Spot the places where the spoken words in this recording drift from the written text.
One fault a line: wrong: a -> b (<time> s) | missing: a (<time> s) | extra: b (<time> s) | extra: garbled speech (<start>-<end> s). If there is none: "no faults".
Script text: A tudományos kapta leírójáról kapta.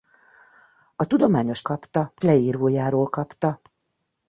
no faults